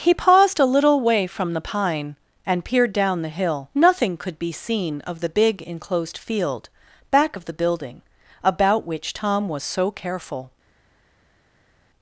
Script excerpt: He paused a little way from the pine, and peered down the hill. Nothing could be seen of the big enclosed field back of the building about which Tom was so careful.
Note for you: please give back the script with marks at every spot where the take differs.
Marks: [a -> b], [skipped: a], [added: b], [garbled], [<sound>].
He paused a little way from the pine, and peered down the hill. Nothing could be seen of the big enclosed field back of the building about which Tom was so careful.